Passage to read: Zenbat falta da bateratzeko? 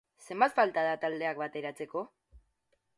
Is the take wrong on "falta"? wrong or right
right